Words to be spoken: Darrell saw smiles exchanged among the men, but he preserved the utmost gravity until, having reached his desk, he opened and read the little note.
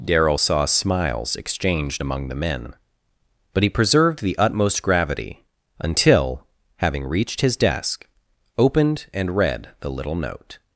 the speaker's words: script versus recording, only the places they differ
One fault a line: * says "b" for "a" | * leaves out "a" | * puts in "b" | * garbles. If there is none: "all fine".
* leaves out "he"